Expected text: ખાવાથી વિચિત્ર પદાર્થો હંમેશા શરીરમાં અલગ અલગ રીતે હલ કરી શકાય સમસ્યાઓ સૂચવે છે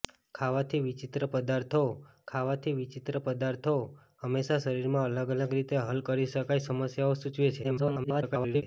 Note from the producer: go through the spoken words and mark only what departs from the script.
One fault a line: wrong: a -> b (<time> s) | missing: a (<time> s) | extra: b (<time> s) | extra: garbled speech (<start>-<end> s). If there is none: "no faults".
extra: ખાવાથી વિચિત્ર પદાર્થો (2.3 s)
extra: garbled speech (7.6-8.6 s)